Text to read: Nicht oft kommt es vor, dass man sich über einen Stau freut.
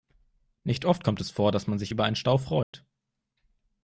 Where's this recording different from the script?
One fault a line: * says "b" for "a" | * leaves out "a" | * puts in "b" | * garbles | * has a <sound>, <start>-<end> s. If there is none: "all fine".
* has a dropout, 2.6-2.7 s